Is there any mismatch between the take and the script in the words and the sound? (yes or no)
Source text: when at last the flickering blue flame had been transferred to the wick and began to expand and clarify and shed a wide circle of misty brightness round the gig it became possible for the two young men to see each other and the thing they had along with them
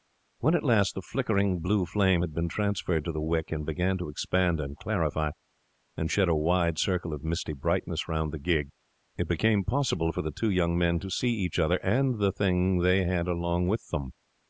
no